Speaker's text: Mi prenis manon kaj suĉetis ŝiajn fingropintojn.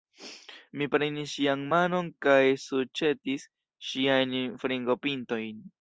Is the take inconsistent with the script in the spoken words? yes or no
yes